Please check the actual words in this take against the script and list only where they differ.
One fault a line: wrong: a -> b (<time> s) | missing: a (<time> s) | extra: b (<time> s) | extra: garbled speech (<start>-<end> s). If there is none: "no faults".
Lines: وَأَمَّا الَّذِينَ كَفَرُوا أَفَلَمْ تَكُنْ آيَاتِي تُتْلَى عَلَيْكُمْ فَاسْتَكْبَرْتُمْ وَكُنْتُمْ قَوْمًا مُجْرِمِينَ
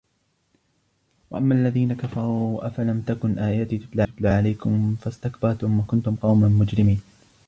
extra: تُتْلَى (4.0 s)